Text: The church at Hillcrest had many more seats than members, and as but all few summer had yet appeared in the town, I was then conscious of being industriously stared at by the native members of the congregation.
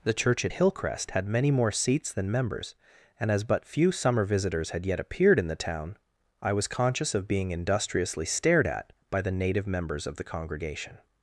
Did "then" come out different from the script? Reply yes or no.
yes